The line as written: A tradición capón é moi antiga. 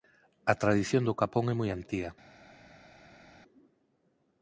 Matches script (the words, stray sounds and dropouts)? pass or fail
fail